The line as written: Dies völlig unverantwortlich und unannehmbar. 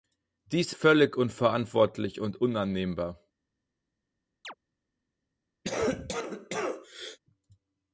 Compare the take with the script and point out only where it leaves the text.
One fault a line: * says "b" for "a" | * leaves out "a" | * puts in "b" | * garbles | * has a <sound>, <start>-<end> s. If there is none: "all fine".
* has a chirp, 4.4-4.5 s
* has a cough, 5.6-7.2 s